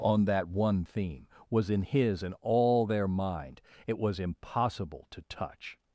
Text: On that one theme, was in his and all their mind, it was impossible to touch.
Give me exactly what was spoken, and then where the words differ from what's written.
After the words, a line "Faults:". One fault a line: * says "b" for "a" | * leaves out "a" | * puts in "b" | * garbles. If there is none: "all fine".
On that one theme, was in his and all their mind, it was impossible to touch.
Faults:
all fine